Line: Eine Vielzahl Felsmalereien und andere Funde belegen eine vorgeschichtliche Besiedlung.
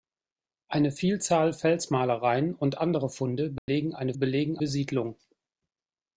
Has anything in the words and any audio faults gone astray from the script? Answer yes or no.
yes